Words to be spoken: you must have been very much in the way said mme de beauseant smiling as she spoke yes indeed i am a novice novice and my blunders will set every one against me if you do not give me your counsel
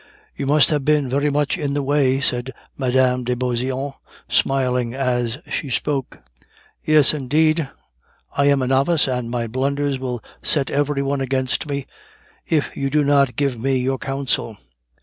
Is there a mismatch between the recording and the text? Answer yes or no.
yes